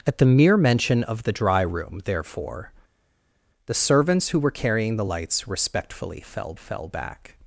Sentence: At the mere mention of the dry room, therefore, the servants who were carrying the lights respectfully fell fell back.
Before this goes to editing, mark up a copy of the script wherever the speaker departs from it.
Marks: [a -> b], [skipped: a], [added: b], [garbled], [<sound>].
At the mere mention of the dry room, therefore, the servants who were carrying the lights respectfully fell fell back.